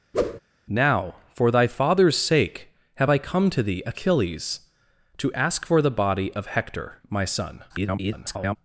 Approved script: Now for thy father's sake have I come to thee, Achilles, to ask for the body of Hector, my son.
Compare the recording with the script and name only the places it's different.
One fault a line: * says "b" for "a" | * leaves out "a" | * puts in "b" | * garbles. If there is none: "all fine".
* garbles